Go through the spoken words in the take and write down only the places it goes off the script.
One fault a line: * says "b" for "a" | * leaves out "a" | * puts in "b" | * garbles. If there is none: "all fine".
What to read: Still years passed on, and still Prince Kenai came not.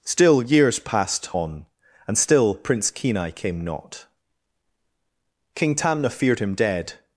* puts in "King Tamna feared him dead"